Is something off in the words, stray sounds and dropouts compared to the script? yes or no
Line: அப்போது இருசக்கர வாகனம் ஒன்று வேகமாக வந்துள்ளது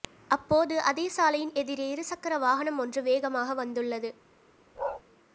yes